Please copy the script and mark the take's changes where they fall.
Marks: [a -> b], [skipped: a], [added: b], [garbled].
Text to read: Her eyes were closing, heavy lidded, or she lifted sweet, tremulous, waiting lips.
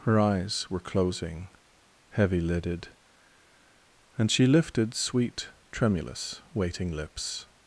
Her eyes were closing, heavy lidded, [or -> and] she lifted sweet, tremulous, waiting lips.